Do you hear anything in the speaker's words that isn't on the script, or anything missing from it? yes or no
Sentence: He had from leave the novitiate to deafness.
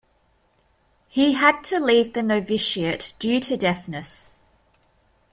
yes